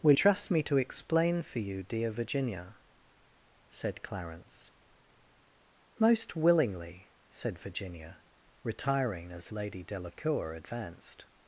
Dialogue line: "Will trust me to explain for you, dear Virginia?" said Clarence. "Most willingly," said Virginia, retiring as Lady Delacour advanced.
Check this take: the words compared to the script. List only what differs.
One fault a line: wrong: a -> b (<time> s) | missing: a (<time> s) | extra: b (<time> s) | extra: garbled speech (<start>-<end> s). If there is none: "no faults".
no faults